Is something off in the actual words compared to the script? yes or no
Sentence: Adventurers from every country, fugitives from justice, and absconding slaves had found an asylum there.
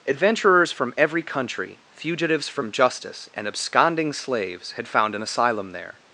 no